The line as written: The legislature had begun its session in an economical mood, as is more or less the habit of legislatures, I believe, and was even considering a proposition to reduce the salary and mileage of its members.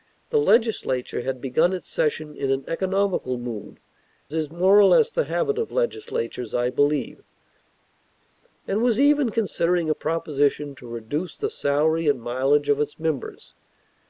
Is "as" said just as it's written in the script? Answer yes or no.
no